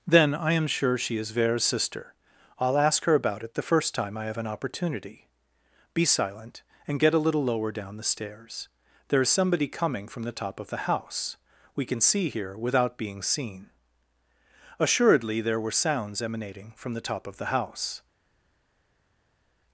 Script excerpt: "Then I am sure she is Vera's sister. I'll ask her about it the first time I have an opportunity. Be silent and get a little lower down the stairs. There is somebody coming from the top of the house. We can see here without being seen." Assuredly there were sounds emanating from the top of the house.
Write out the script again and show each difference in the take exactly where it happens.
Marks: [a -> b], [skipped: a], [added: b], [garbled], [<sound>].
"Then I am sure she is Vera's sister. I'll ask her about it the first time I have an opportunity. Be silent and get a little lower down the stairs. There is somebody coming from the top of the house. We can see here without being seen." Assuredly there were sounds emanating from the top of the house.